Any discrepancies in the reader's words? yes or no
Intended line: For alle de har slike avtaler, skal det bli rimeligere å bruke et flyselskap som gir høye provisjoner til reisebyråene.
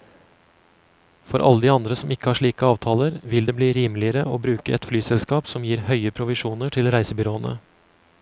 yes